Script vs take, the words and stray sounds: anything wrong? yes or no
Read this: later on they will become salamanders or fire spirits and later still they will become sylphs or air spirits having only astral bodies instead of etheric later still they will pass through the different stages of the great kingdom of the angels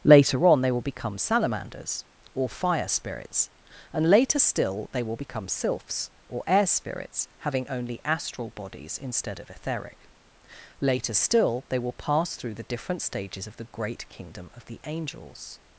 no